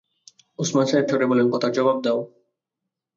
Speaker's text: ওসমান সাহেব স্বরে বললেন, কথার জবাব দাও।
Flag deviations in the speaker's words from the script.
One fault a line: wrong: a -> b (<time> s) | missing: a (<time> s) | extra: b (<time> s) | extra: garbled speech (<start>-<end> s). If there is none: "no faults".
no faults